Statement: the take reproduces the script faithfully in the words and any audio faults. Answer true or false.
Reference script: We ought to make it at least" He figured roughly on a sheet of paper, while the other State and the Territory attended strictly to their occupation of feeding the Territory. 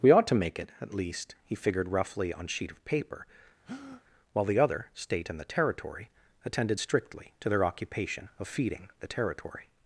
false